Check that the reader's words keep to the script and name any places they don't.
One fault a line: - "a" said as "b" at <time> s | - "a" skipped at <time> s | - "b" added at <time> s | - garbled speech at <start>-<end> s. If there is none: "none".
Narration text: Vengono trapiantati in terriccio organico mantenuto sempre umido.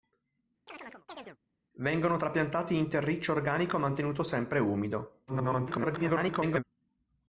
- garbled speech at 5.3-6.6 s